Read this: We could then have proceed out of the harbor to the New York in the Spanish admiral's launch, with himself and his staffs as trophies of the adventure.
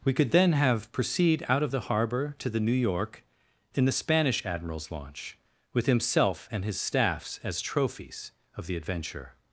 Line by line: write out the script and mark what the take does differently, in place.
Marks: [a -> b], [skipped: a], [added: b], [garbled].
We could then have proceed out of the harbor to the New York in the Spanish admiral's launch, with himself and his staffs as trophies of the adventure.